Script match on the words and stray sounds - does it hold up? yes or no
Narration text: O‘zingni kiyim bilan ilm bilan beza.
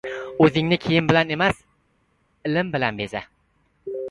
no